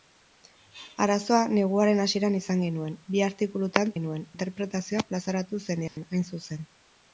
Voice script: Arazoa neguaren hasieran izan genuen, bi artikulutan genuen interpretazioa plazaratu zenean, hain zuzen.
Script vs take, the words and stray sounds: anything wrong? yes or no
yes